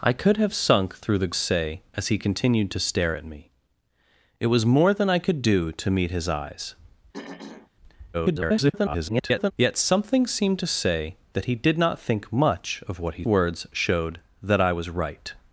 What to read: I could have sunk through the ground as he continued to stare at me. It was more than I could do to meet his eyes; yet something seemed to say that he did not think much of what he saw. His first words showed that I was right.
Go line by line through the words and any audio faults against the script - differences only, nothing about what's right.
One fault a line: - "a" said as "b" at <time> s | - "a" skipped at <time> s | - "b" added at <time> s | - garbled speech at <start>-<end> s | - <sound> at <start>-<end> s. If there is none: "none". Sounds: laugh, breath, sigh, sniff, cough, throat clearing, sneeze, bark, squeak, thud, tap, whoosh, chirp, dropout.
- "ground" said as "say" at 1.3 s
- throat clearing at 7.1-7.7 s
- garbled speech at 8.1-9.5 s
- "saw His first" skipped at 13.2 s